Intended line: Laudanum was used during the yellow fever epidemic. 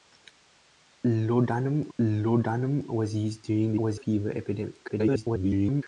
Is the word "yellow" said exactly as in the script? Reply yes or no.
no